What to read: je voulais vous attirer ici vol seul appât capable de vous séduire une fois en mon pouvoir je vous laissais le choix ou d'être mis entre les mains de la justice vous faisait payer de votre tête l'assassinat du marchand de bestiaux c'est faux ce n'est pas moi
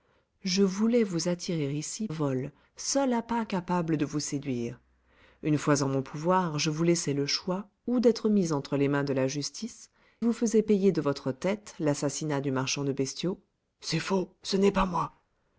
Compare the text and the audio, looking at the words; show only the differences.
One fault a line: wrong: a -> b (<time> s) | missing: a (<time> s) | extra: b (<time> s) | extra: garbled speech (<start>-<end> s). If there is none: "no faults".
no faults